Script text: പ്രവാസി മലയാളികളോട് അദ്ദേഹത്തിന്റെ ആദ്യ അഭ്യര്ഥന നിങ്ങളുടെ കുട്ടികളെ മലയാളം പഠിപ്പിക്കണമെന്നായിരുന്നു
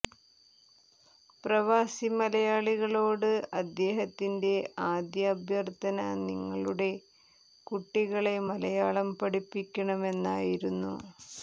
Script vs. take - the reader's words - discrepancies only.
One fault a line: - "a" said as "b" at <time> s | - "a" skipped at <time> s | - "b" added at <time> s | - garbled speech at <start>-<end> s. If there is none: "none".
none